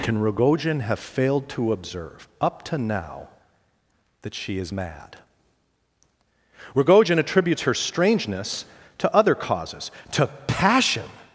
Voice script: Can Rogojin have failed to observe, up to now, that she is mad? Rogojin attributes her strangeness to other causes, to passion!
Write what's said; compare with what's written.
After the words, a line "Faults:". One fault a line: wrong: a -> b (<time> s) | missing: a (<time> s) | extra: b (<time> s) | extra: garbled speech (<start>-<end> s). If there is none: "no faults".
Can Rogojin have failed to observe, up to now, that she is mad? Rogojin attributes her strangeness to other causes, to passion!
Faults:
no faults